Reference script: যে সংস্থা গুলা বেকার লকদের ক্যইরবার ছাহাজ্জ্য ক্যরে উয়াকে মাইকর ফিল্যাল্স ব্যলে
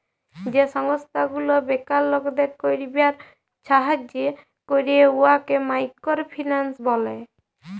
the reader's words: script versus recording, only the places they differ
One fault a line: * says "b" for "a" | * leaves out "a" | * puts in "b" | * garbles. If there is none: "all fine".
all fine